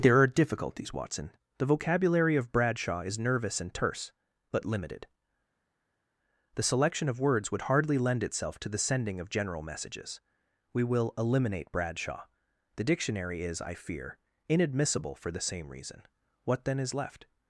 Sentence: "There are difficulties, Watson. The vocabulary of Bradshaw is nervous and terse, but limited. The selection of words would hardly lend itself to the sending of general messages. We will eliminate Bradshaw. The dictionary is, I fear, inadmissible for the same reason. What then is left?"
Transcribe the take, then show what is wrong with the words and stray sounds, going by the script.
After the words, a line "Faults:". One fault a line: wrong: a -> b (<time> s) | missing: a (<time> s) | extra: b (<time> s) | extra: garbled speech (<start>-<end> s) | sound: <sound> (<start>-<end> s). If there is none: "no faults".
"There are difficulties, Watson. The vocabulary of Bradshaw is nervous and terse, but limited. The selection of words would hardly lend itself to the sending of general messages. We will eliminate Bradshaw. The dictionary is, I fear, inadmissible for the same reason. What then is left?"
Faults:
no faults